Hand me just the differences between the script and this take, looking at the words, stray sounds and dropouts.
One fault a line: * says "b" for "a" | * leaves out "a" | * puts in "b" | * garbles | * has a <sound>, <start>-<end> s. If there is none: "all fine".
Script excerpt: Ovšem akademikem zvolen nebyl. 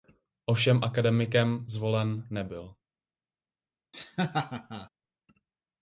* has a laugh, 3.9-4.9 s